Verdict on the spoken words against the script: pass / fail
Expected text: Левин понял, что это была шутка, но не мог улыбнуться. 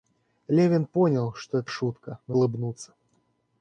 fail